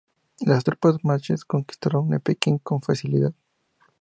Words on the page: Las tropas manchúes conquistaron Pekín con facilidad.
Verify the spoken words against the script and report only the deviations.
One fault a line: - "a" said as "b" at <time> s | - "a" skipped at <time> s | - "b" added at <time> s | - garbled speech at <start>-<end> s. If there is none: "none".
none